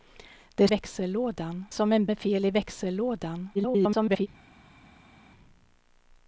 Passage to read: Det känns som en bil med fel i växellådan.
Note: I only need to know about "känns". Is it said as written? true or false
false